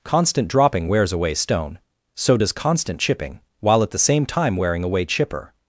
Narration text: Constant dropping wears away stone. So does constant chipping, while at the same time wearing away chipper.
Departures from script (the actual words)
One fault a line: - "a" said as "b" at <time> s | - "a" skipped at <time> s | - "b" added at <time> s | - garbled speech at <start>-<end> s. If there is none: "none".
none